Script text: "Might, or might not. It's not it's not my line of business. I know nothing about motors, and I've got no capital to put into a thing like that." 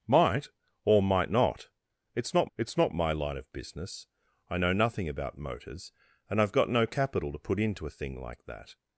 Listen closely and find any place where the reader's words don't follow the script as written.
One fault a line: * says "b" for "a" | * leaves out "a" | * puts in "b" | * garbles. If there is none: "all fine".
all fine